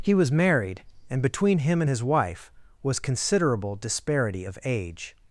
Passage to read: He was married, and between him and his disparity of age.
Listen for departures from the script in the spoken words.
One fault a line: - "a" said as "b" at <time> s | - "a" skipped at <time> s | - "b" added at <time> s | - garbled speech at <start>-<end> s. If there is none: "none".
- "wife was considerable" added at 2.0 s